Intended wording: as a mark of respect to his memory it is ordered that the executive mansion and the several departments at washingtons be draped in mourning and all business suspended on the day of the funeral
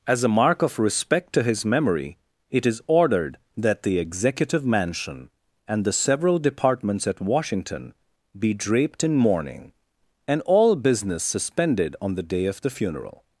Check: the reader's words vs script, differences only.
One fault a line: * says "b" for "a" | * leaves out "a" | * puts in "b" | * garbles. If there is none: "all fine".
* says "washington" for "washingtons"